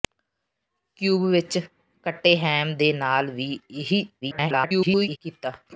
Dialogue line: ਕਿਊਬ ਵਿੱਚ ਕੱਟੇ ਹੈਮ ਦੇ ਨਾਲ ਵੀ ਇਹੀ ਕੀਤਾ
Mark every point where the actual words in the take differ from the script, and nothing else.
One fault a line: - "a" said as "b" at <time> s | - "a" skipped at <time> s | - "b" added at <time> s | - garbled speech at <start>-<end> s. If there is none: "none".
- garbled speech at 4.2-5.2 s